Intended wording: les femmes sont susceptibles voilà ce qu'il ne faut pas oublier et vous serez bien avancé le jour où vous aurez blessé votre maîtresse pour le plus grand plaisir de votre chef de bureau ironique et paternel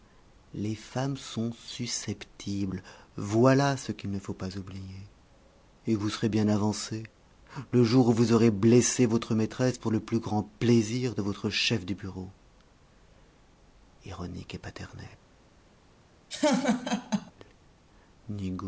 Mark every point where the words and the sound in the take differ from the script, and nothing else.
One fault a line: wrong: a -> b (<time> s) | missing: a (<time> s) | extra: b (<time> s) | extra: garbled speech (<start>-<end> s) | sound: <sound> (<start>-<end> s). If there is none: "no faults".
sound: laugh (16.3-17.3 s)